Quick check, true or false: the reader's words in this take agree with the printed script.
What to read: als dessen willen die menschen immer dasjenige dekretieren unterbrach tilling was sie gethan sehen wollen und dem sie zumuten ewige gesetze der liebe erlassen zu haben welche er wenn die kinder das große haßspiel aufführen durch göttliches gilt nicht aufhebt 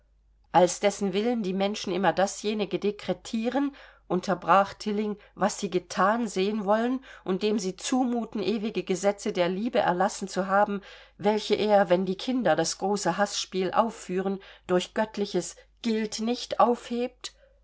true